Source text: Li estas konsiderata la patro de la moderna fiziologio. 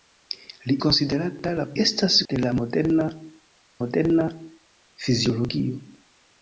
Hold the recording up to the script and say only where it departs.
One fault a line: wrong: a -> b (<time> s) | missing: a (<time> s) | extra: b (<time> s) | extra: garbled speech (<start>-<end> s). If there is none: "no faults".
missing: estas (0.8 s)
wrong: patro -> estas (1.8 s)
extra: moderna (3.8 s)